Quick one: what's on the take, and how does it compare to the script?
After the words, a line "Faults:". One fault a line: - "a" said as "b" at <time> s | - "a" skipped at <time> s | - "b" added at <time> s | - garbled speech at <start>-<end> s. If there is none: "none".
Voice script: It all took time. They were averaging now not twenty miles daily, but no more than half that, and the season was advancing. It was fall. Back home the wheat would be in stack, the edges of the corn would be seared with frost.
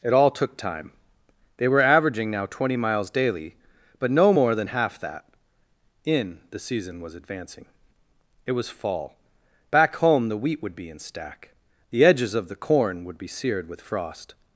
It all took time. They were averaging now twenty miles daily, but no more than half that, in the season was advancing. It was fall. Back home the wheat would be in stack, the edges of the corn would be seared with frost.
Faults:
- "not" skipped at 2.5 s
- "and" said as "in" at 6.0 s